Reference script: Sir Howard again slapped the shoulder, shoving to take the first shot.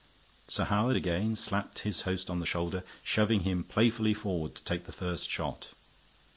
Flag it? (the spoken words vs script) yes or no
yes